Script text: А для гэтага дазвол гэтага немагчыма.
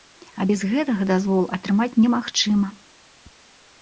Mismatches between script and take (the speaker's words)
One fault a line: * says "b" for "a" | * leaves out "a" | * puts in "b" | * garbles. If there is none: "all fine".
* says "без" for "для"
* says "атрымаць" for "гэтага"